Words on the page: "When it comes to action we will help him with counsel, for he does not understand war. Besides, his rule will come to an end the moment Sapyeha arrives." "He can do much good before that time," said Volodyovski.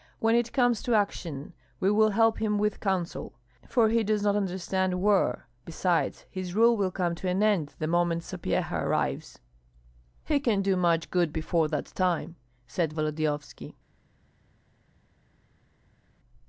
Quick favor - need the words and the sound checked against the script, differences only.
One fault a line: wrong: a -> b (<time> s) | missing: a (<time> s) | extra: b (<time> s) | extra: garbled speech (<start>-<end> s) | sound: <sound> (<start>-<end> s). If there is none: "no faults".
no faults